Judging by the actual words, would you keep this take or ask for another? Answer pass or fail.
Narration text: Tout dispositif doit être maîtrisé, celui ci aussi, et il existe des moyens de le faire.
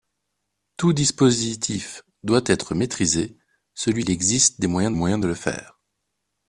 fail